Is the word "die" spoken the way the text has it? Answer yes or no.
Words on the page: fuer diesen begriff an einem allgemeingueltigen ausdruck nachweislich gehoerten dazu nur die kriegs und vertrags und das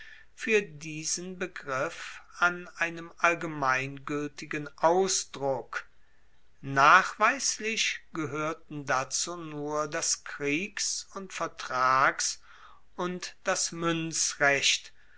no